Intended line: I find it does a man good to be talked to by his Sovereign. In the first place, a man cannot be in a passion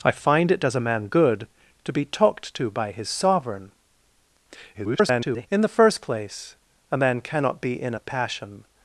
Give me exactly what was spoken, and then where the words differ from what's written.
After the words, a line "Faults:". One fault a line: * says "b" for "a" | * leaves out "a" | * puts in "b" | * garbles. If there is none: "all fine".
I find it does a man good to be talked to by his Sovereign. [garbled] In the first place, a man cannot be in a passion
Faults:
* garbles